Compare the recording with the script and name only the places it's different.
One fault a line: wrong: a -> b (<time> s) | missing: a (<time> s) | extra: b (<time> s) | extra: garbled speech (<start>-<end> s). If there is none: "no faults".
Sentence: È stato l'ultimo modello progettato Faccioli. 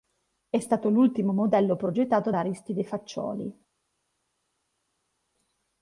extra: da Aristide (2.3 s)